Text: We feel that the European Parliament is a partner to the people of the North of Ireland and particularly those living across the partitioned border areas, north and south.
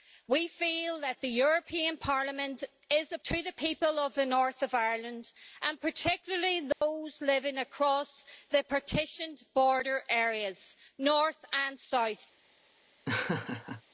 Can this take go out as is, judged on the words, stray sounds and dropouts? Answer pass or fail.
fail